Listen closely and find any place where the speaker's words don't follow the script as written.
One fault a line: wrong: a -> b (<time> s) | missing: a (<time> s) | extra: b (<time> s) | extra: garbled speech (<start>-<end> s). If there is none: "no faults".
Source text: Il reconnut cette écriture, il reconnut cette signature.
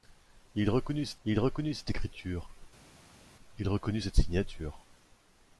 extra: il reconnut cette (1.2 s)